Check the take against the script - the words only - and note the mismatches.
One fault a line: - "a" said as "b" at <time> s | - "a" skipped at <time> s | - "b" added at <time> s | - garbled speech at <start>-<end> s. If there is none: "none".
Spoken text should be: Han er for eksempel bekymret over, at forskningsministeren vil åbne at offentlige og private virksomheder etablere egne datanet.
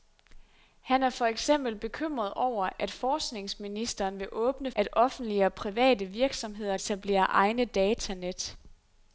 none